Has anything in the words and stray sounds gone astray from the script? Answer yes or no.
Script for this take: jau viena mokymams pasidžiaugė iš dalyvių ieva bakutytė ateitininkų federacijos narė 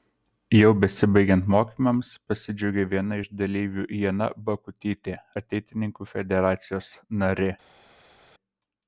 yes